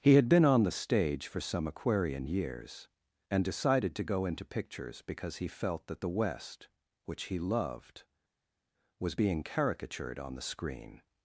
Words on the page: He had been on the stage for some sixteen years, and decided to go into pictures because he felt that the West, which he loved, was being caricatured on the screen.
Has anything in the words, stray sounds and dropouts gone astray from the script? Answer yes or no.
yes